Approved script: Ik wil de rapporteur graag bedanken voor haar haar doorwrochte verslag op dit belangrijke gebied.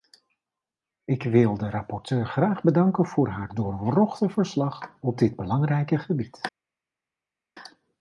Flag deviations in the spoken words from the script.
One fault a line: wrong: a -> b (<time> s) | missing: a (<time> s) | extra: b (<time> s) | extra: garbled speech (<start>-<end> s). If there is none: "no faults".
missing: haar (3.5 s)